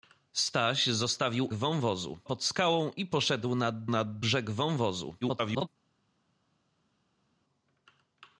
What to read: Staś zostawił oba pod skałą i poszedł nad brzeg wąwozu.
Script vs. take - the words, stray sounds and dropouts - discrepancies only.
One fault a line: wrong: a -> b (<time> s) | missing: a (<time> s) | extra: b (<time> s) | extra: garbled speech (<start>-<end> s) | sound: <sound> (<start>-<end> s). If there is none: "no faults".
wrong: oba -> wąwozu (1.5 s)
extra: nad (3.9 s)
extra: garbled speech (5.2-5.7 s)